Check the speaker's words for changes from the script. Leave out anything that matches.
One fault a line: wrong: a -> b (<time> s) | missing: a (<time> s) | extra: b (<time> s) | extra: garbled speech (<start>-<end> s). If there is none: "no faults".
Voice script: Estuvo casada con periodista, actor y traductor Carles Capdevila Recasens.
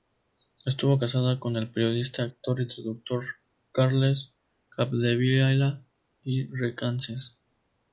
extra: el (1.6 s)
extra: i (6.2 s)